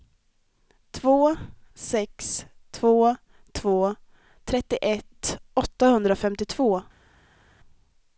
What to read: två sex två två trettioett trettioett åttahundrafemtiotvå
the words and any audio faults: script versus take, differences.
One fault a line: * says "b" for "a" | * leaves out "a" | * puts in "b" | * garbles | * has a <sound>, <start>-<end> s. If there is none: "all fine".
* leaves out "trettioett"